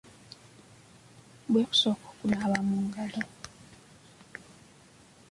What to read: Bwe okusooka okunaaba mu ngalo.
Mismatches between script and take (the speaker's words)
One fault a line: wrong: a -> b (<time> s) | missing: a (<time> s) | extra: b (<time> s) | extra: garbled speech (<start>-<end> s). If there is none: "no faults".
no faults